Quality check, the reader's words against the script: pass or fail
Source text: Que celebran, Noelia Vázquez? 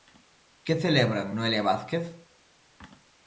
pass